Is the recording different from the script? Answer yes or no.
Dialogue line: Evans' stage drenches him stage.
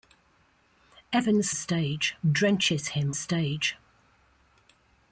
no